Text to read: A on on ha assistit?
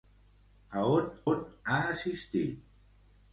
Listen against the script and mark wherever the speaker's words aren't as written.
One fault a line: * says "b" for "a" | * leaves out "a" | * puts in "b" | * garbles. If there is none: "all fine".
all fine